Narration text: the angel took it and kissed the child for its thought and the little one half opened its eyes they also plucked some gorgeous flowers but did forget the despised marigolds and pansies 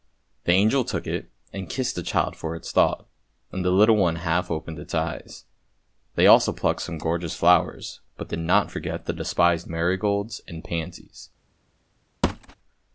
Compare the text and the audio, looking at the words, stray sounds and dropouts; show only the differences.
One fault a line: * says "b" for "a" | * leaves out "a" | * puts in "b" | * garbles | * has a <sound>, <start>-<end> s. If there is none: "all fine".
* puts in "not"
* has a thud, 12.2-12.6 s